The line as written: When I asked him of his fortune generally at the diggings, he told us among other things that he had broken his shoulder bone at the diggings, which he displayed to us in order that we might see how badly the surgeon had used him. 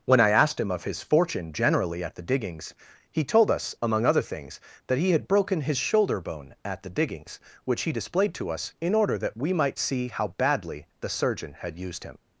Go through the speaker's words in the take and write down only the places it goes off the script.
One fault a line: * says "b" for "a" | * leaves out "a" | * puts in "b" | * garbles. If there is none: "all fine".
all fine